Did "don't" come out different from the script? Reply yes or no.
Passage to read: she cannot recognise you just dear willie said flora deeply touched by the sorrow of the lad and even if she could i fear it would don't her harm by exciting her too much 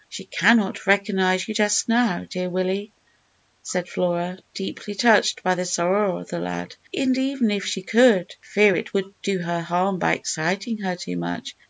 yes